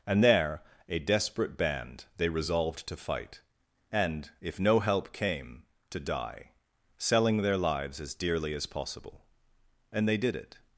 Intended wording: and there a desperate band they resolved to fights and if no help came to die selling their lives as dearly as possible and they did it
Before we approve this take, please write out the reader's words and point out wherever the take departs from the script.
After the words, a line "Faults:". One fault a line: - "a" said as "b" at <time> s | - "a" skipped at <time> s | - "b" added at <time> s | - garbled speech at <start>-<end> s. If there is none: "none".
and there a desperate band they resolved to fight and if no help came to die selling their lives as dearly as possible and they did it
Faults:
- "fights" said as "fight" at 3.0 s